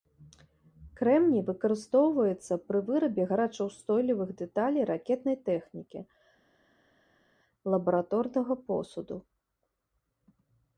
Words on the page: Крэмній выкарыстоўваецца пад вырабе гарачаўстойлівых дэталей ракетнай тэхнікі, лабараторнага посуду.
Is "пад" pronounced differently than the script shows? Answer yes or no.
yes